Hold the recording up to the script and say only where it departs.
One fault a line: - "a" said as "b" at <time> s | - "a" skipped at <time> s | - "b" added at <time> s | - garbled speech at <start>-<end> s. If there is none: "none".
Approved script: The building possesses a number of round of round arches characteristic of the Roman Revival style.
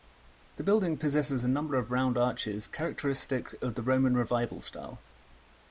- "of round" skipped at 2.2 s